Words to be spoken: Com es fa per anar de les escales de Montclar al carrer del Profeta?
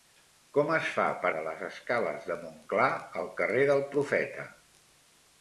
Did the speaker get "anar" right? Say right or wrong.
wrong